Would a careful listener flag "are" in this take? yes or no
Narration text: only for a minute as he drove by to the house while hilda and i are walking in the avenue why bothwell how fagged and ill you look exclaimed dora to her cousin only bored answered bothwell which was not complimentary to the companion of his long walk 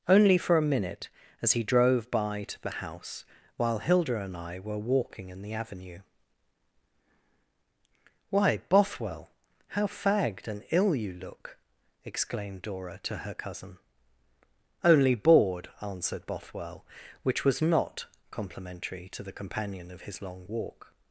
yes